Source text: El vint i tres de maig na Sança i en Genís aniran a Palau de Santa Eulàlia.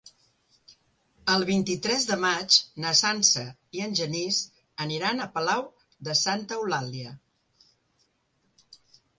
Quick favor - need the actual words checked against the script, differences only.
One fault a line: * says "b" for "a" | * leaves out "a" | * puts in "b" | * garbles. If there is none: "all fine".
all fine